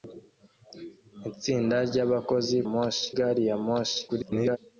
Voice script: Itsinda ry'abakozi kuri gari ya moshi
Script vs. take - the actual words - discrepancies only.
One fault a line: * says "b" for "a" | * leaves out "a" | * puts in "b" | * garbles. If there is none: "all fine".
* says "moshi" for "kuri"
* garbles